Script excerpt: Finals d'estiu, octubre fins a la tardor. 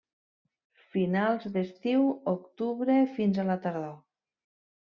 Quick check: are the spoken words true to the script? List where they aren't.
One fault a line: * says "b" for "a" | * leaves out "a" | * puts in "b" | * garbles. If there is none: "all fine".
all fine